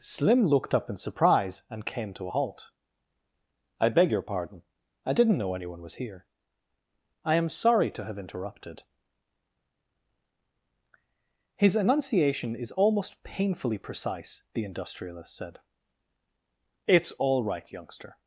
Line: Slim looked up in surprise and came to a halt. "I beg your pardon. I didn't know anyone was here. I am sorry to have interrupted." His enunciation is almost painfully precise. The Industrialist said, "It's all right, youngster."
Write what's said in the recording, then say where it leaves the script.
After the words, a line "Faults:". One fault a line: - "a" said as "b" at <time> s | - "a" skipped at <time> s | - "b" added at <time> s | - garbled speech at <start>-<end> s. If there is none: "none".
Slim looked up in surprise and came to a halt. "I beg your pardon. I didn't know anyone was here. I am sorry to have interrupted." His enunciation is almost painfully precise. The Industrialist said, "It's all right, youngster."
Faults:
none